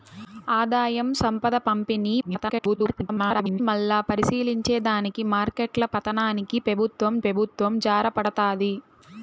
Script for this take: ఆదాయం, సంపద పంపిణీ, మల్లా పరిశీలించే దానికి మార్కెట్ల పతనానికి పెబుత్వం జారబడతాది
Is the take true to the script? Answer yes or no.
no